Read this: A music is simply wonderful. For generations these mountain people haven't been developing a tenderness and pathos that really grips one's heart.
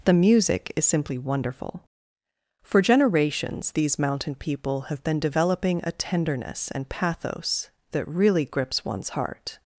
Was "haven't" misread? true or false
true